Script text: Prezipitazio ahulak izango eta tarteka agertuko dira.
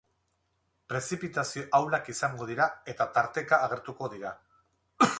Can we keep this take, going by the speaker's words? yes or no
no